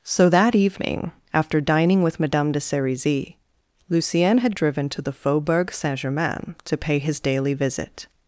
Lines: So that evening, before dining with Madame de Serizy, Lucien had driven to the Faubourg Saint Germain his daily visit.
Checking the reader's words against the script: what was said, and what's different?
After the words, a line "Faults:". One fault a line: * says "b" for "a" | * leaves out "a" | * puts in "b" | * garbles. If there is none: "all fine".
So that evening, after dining with Madame de Serizy, Lucien had driven to the Faubourg Saint Germain to pay his daily visit.
Faults:
* says "after" for "before"
* puts in "to pay"